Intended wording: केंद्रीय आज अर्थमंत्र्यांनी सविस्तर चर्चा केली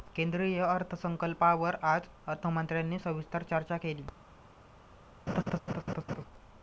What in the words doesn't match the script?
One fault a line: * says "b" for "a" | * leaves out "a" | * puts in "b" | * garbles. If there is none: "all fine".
* puts in "अर्थसंकल्पावर"